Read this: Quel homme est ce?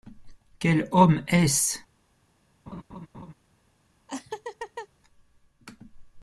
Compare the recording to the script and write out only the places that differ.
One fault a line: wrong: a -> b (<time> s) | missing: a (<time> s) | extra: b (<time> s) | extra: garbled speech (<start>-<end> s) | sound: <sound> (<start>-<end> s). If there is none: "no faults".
sound: laugh (2.7-3.3 s)
sound: laugh (4.1-4.9 s)